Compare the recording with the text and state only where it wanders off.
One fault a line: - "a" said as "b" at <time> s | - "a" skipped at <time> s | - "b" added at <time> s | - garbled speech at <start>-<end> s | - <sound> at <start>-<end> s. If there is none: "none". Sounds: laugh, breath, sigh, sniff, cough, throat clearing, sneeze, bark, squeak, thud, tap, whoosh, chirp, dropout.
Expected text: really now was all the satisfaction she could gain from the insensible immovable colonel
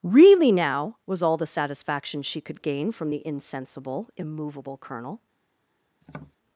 - tap at 6.0-6.4 s